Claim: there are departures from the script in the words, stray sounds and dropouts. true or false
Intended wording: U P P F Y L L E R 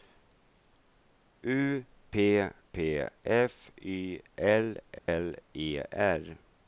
true